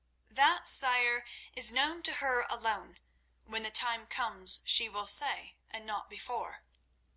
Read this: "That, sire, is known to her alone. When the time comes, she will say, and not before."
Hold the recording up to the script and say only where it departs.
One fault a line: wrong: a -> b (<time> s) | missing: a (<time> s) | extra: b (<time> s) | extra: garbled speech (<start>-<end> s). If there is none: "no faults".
no faults